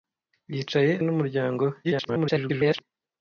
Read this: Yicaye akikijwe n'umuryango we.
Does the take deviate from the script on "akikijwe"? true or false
true